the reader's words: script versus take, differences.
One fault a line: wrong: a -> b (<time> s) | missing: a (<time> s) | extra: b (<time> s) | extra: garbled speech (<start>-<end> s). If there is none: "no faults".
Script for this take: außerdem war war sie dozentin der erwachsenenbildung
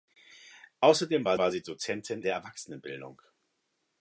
no faults